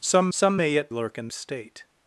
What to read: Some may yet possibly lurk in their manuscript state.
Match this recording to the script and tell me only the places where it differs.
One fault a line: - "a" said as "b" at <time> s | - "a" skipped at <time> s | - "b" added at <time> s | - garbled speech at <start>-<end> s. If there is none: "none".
- "some" added at 0.3 s
- "possibly" skipped at 0.9 s
- "their manuscript" skipped at 1.3 s